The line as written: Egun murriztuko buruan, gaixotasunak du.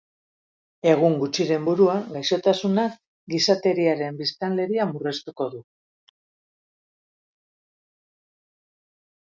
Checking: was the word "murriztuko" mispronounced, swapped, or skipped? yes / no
yes